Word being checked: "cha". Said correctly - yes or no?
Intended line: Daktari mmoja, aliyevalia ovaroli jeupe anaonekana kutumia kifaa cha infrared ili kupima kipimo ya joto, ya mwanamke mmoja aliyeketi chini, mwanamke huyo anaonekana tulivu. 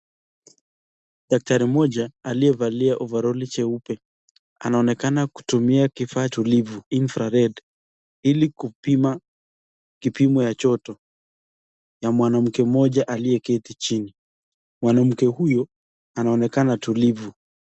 no